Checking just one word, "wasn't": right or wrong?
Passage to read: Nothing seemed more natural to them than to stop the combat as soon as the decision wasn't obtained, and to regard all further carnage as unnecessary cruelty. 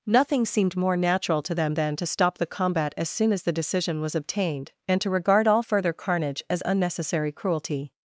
wrong